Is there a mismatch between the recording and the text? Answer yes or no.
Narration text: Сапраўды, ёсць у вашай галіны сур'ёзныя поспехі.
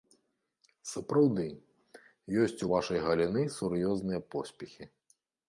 no